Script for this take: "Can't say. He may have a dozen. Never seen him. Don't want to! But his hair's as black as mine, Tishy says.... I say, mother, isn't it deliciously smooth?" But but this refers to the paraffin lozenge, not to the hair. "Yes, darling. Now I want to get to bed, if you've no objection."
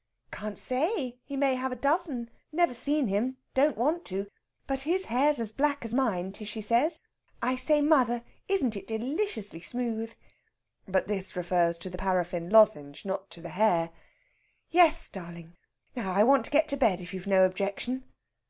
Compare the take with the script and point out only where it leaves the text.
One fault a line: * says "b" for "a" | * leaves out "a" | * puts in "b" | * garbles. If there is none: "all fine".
* leaves out "but"